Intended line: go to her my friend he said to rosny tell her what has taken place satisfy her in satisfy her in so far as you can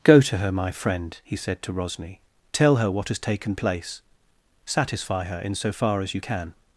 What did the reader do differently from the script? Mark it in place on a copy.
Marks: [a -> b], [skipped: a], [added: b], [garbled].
go to her my friend he said to rosny tell her what has taken place satisfy her in [skipped: satisfy her in] so far as you can